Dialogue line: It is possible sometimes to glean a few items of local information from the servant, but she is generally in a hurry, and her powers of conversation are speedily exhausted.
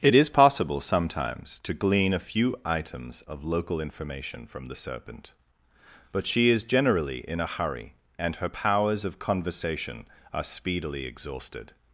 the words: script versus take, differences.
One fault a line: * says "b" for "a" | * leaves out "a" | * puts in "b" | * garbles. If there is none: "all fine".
* says "serpent" for "servant"